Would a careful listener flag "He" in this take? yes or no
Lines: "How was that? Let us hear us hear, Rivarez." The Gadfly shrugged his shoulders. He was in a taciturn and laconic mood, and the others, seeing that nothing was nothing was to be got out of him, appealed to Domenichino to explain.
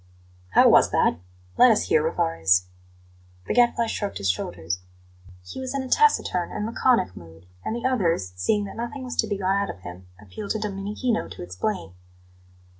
no